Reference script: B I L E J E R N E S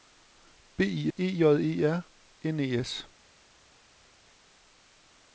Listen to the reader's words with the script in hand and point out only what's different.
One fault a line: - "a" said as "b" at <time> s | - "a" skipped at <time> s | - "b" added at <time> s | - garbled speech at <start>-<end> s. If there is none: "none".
- "L" skipped at 1.1 s